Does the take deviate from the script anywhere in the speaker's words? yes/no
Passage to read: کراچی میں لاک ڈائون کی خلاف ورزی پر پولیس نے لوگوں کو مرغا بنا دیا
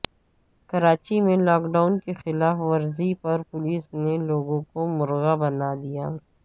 no